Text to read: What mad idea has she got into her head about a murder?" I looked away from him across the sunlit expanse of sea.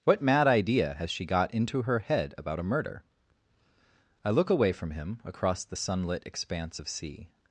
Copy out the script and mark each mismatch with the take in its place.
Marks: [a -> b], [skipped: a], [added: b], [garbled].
What mad idea has she got into her head about a murder?" I [looked -> look] away from him across the sunlit expanse of sea.